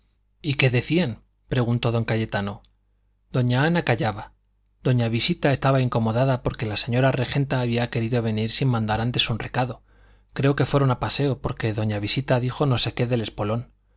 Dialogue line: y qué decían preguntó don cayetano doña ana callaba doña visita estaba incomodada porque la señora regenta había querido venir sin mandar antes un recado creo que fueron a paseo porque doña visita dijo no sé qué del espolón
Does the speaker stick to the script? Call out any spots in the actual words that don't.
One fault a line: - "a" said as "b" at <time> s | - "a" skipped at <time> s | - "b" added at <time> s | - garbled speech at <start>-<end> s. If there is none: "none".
none